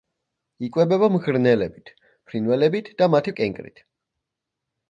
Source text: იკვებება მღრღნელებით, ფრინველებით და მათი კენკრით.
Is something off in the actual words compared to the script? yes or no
no